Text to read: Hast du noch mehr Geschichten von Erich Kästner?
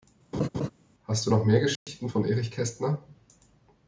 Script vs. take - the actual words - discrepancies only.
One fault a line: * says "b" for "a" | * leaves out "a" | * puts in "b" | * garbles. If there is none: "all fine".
all fine